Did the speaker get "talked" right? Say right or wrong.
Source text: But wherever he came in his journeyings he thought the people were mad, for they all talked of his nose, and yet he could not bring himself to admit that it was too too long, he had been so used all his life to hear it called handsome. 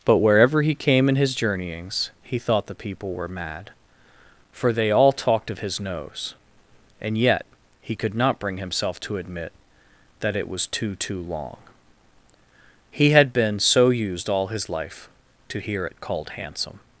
right